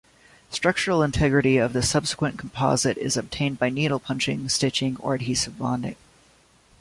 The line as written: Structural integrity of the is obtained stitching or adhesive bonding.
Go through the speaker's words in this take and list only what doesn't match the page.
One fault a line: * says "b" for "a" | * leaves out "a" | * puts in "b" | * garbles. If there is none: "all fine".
* puts in "subsequent composite"
* puts in "by needle punching"